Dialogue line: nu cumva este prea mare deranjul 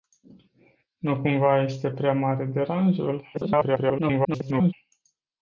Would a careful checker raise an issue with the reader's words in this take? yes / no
yes